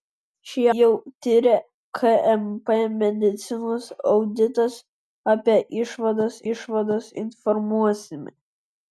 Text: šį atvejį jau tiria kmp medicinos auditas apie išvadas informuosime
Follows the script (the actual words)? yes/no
no